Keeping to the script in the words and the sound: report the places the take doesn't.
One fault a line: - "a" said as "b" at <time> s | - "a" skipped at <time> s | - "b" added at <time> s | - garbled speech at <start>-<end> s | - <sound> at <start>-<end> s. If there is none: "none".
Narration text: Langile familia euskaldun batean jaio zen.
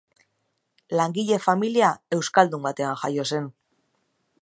none